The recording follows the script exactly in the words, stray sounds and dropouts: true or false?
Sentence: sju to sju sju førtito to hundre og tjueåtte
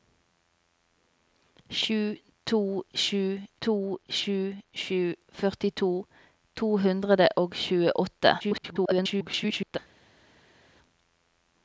false